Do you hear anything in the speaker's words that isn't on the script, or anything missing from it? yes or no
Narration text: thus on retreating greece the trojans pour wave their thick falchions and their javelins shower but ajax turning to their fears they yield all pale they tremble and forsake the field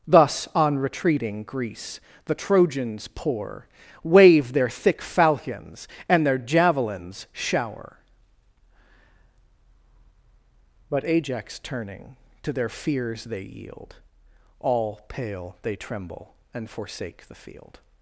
no